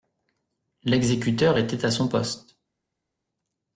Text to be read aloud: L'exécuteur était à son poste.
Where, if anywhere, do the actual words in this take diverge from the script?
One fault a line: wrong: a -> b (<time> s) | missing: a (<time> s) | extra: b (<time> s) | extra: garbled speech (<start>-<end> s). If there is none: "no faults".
no faults